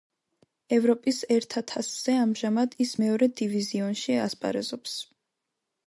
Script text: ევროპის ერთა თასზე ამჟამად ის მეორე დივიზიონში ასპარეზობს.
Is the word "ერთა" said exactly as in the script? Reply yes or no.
yes